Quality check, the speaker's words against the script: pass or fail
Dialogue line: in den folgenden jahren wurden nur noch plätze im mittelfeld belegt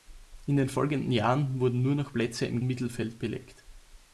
pass